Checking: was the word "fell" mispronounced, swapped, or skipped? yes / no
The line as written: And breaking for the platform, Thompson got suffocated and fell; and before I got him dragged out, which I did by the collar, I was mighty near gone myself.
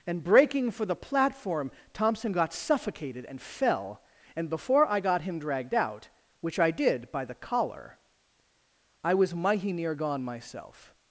no